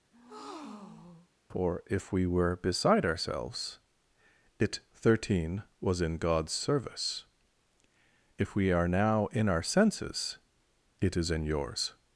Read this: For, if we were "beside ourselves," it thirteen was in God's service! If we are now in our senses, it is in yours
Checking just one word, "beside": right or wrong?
right